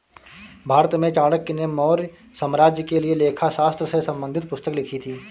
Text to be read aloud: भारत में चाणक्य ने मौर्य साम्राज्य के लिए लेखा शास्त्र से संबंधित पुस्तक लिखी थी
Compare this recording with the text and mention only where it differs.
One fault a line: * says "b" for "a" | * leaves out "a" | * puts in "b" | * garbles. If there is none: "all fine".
all fine